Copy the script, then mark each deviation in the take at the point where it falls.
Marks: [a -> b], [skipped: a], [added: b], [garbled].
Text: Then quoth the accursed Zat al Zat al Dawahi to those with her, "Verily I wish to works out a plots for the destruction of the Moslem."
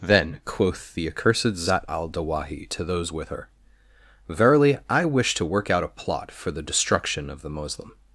Then quoth the accursed Zat al [skipped: Zat al] Dawahi to those with her, "Verily I wish to [works -> work] out a [plots -> plot] for the destruction of the Moslem."